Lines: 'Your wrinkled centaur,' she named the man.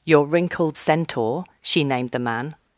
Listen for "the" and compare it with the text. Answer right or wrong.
right